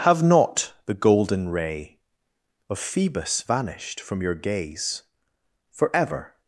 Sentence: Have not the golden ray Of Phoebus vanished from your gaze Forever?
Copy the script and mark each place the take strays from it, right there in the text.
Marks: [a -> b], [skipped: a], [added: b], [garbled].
Have not the golden ray Of Phoebus vanished from your gaze Forever?